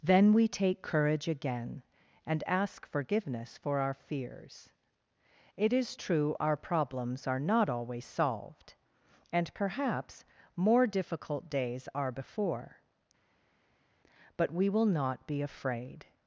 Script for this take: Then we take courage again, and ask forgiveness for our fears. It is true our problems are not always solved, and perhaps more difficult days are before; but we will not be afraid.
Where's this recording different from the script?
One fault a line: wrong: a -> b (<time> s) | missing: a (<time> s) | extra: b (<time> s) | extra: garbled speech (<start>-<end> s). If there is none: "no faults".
no faults